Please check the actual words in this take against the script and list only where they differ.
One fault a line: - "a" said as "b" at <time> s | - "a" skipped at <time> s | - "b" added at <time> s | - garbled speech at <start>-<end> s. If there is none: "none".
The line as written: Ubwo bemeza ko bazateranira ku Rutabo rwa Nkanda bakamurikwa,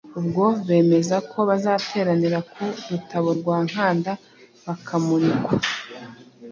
none